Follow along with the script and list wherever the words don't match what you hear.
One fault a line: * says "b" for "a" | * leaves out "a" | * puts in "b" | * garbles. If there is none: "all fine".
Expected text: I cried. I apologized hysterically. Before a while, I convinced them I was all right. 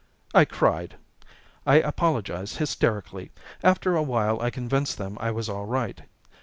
* says "After" for "Before"